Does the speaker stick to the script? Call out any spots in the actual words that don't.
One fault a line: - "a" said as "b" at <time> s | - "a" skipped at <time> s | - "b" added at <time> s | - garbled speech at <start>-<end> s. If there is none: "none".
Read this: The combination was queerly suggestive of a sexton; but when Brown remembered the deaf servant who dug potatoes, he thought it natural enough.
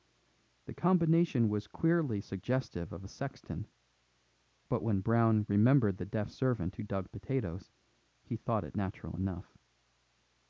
none